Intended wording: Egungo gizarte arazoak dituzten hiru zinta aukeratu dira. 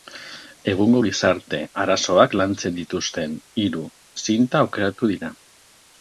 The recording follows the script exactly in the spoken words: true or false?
false